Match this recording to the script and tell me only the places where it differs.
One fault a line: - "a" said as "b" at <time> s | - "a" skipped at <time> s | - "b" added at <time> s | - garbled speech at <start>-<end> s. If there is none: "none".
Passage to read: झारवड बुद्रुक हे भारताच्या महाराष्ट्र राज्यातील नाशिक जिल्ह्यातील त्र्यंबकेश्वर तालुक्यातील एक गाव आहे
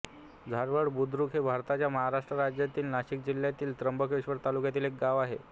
none